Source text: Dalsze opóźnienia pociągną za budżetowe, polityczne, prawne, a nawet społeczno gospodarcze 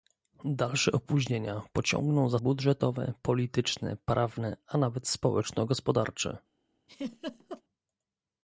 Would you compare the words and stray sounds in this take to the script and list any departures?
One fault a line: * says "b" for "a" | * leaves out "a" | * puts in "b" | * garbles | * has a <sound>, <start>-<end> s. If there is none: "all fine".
* has a laugh, 6.9-7.6 s